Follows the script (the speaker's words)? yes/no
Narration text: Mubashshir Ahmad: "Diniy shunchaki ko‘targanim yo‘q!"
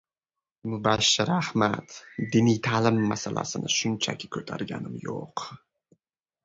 no